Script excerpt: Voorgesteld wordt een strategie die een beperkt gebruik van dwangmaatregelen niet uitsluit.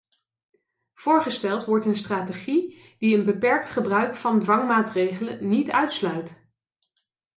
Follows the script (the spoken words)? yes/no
yes